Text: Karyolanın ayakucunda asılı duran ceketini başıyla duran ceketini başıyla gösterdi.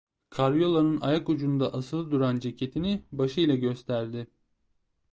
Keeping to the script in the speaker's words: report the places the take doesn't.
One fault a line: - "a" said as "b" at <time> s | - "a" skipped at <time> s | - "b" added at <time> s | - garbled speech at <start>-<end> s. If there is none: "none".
- "duran ceketini başıyla" skipped at 3.6 s